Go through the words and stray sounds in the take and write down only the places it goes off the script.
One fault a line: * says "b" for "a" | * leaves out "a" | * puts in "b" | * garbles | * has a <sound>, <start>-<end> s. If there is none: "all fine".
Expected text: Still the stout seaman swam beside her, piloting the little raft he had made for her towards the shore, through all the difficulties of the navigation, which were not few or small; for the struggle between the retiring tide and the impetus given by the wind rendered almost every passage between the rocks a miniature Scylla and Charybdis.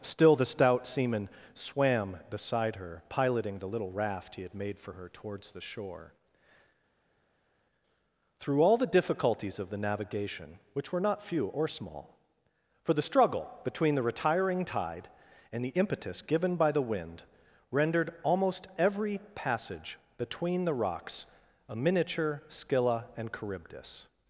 all fine